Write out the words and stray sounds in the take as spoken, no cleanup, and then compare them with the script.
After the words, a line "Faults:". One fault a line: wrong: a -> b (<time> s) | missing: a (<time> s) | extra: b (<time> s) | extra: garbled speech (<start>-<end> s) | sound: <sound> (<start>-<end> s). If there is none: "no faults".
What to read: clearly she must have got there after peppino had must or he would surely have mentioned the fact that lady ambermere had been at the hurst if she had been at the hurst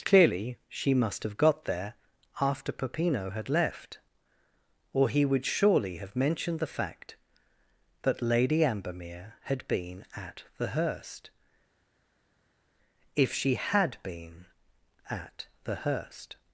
clearly she must have got there after peppino had left or he would surely have mentioned the fact that lady ambermere had been at the hurst if she had been at the hurst
Faults:
wrong: must -> left (3.5 s)